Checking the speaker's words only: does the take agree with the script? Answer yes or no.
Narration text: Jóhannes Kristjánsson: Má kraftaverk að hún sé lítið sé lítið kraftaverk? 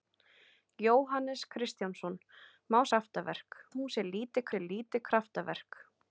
yes